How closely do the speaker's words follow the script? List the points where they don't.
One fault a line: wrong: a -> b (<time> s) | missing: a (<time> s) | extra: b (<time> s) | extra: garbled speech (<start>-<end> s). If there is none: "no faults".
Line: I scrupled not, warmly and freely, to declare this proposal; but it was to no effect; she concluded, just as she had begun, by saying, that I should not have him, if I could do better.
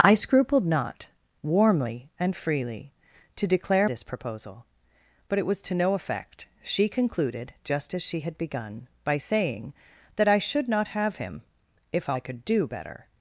no faults